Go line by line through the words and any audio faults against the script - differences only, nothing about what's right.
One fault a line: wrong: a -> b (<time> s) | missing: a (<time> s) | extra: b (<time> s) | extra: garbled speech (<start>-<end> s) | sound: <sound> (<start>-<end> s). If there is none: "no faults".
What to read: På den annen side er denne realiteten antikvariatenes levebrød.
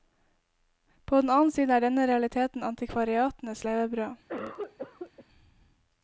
sound: cough (4.3-5.2 s)